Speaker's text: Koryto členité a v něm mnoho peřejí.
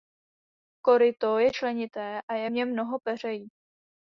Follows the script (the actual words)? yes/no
no